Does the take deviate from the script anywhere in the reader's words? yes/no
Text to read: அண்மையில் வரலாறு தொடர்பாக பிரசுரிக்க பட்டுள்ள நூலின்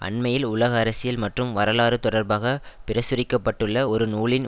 yes